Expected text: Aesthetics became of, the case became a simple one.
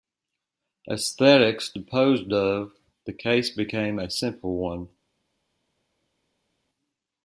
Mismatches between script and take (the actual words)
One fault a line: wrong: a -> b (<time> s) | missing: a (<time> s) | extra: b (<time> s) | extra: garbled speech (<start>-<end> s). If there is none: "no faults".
wrong: became -> disposed (1.7 s)